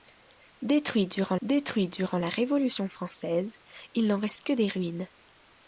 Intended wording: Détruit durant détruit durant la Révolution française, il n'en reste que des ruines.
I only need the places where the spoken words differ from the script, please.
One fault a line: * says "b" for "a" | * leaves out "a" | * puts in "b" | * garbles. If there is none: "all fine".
all fine